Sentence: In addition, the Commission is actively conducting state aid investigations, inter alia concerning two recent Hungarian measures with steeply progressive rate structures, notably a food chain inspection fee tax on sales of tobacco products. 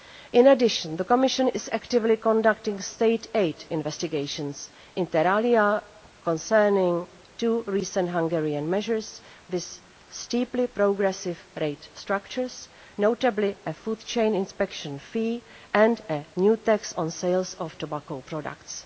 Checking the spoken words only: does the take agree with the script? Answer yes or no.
no